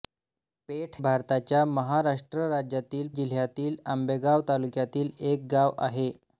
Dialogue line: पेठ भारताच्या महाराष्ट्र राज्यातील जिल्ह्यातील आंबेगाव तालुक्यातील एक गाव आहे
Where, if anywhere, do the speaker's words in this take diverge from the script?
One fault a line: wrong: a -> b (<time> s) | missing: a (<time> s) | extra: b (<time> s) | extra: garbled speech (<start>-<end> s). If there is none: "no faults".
no faults